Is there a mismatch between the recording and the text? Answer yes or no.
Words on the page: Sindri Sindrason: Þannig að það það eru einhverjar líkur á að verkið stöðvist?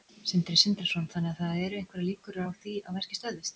yes